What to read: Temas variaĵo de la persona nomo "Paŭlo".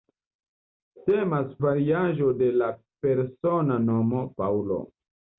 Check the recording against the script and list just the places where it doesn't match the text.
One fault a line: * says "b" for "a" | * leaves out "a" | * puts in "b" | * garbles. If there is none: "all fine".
all fine